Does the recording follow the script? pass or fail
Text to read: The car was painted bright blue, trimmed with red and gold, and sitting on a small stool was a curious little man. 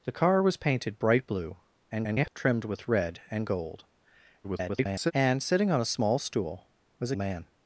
fail